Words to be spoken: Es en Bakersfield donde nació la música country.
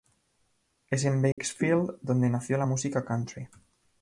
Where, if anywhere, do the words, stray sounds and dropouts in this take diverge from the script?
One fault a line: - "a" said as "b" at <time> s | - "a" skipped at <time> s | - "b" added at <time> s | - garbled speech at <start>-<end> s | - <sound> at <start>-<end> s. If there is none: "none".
- dropout at 1.3-1.4 s